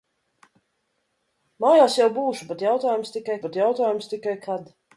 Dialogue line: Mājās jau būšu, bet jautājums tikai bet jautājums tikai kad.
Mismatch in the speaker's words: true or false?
false